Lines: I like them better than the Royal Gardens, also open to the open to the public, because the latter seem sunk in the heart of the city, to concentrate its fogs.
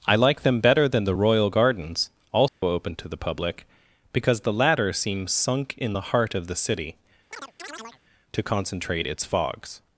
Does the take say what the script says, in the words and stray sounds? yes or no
no